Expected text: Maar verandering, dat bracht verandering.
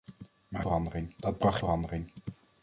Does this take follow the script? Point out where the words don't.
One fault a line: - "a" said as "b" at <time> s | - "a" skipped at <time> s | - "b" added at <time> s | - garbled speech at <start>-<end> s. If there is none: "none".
none